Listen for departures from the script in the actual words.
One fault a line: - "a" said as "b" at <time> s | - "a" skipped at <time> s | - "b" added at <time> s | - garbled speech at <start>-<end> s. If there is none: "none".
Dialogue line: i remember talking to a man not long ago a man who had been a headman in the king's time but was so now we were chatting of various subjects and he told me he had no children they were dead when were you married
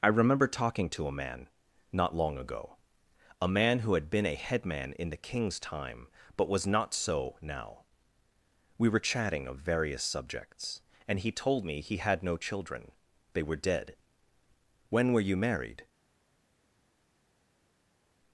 - "not" added at 6.7 s